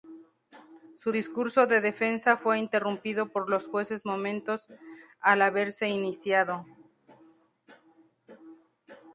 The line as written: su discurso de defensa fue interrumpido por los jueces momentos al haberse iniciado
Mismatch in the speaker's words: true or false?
false